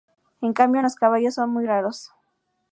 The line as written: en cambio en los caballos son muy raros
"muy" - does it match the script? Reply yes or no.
yes